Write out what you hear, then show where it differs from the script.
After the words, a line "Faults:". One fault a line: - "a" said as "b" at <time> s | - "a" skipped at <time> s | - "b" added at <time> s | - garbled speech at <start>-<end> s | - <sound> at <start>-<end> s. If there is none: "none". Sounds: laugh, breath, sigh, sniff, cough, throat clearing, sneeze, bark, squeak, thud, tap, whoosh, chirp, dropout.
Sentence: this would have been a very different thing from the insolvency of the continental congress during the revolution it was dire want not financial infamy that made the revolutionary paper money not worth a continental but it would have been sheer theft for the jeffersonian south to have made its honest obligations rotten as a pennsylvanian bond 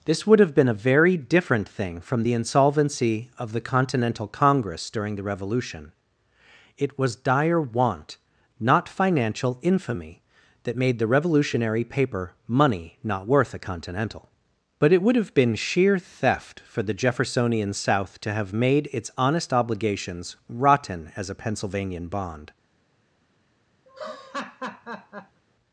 this would have been a very different thing from the insolvency of the continental congress during the revolution it was dire want not financial infamy that made the revolutionary paper money not worth a continental but it would have been sheer theft for the jeffersonian south to have made its honest obligations rotten as a pennsylvanian bond
Faults:
- laugh at 23.9-25.4 s